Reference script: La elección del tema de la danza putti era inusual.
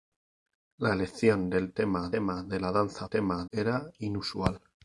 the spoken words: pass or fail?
fail